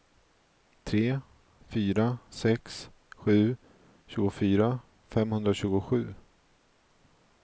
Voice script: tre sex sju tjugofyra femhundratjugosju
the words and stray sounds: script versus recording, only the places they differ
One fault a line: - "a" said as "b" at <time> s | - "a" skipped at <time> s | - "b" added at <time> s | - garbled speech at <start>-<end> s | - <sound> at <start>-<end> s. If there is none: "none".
- "fyra" added at 1.7 s